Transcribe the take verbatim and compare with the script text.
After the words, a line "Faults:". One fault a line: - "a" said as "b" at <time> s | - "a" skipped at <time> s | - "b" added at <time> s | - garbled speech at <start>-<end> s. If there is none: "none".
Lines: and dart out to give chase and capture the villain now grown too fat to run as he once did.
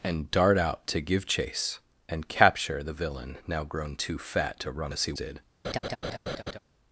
and dart out to give chase and capture the villain now grown too fat to run as he did.
Faults:
- "once" skipped at 5.1 s